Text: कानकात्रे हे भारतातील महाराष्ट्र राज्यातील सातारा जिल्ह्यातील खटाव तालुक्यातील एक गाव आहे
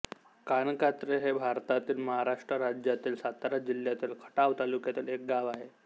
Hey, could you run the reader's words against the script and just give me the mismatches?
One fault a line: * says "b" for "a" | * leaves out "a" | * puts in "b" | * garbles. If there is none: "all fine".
all fine